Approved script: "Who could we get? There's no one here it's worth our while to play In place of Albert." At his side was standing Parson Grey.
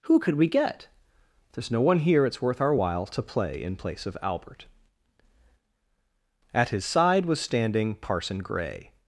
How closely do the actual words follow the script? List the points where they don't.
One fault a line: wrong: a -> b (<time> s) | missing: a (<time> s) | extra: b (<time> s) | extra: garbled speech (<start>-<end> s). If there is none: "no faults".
no faults